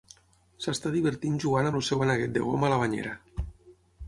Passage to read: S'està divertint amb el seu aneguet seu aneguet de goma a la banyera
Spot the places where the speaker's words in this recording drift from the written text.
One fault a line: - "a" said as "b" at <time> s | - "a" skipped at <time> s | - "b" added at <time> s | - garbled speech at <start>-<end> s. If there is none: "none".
- "jugant" added at 1.4 s
- "seu aneguet" skipped at 2.3 s